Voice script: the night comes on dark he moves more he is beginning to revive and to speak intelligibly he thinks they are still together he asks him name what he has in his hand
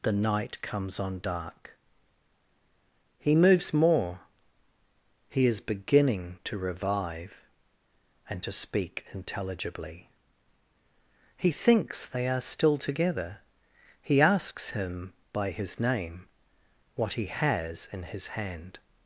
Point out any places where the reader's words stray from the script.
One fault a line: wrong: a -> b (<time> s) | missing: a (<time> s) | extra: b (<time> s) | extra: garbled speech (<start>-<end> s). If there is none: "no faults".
extra: by his (15.3 s)